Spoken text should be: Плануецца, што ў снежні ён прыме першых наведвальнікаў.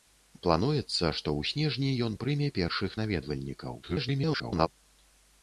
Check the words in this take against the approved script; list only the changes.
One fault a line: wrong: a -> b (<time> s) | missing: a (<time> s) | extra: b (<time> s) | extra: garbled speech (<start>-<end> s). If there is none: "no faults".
extra: garbled speech (3.8-4.7 s)